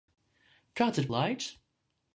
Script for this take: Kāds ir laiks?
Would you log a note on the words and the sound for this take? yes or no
no